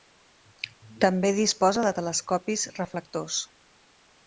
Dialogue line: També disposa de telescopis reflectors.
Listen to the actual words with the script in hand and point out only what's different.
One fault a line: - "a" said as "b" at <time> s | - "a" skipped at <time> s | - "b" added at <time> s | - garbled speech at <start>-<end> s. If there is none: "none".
none